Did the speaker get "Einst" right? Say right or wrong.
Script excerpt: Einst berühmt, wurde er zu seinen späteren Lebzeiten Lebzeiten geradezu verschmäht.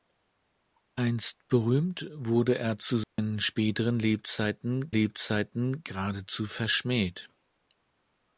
right